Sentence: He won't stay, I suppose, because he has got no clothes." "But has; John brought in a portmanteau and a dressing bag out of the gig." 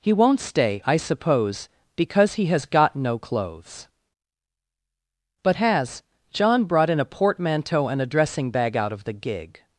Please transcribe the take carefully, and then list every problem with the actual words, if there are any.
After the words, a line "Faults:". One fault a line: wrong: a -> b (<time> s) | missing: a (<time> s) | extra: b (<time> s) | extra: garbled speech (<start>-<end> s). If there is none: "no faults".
He won't stay, I suppose, because he has got no clothes." "But has; John brought in a portmanteau and a dressing bag out of the gig."
Faults:
no faults